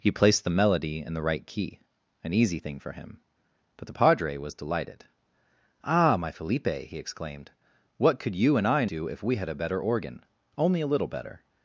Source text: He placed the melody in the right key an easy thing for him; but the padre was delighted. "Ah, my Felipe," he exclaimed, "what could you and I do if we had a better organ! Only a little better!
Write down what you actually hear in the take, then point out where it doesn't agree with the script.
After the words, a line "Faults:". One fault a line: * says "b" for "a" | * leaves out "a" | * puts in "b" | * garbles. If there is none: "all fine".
He placed the melody in the right key an easy thing for him; but the padre was delighted. "Ah, my Felipe," he exclaimed, "what could you and I do if we had a better organ! Only a little better!
Faults:
all fine